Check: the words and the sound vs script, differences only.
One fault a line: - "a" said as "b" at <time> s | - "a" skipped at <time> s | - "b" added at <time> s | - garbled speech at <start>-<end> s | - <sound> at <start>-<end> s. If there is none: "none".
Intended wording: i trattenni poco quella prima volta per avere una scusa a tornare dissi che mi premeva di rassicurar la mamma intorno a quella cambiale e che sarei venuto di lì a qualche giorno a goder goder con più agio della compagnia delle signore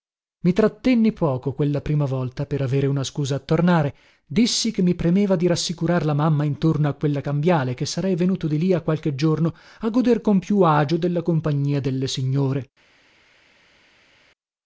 - "goder" skipped at 10.2 s